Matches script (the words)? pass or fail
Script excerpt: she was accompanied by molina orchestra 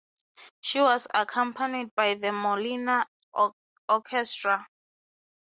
fail